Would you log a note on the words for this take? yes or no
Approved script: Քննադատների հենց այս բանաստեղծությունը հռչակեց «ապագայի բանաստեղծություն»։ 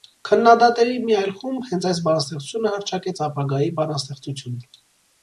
yes